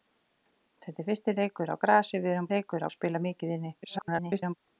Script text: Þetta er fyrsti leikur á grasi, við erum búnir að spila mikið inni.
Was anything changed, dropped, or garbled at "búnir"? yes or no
yes